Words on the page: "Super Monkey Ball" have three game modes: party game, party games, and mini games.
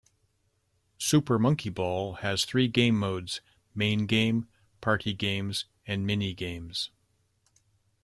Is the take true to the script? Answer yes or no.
no